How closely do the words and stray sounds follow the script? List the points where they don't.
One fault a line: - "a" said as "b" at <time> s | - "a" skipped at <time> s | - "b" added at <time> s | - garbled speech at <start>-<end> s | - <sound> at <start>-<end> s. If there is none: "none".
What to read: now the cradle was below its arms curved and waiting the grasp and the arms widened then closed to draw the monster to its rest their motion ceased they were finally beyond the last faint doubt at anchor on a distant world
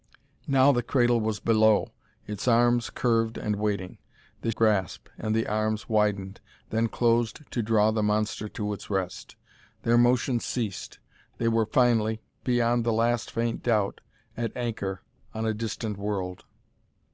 none